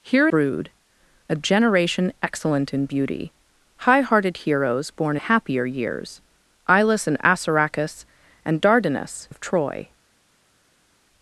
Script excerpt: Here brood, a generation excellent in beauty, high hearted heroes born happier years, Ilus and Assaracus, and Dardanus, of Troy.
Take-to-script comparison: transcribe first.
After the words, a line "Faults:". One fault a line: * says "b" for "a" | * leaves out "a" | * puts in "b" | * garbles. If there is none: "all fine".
Here brood, a generation excellent in beauty, high hearted heroes born happier years, Ilus and Assaracus, and Dardanus, of Troy.
Faults:
all fine